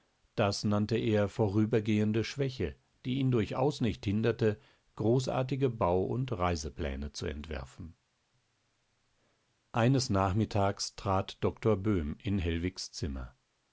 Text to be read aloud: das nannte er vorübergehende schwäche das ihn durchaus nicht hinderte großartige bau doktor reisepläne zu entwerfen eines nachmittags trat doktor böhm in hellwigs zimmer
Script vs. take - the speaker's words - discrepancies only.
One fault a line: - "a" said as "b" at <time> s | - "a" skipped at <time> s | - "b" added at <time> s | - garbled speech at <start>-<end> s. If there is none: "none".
- "das" said as "die" at 3.0 s
- "doktor" said as "und" at 6.0 s